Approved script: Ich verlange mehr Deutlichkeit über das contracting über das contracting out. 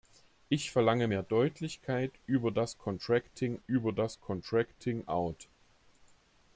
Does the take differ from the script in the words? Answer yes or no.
no